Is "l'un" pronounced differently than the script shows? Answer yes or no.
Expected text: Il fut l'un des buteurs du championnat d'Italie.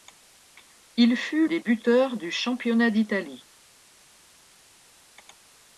yes